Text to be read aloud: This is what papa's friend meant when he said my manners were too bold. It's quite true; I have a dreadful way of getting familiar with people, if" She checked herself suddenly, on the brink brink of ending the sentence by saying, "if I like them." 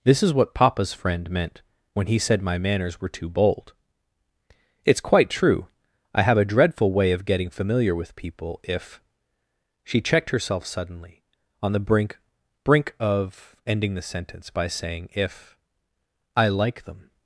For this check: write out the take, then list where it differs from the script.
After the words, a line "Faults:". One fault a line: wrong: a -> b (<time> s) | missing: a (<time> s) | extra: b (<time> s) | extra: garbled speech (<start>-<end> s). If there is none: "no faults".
This is what papa's friend meant when he said my manners were too bold. It's quite true; I have a dreadful way of getting familiar with people, if" She checked herself suddenly, on the brink brink of ending the sentence by saying, "if I like them."
Faults:
no faults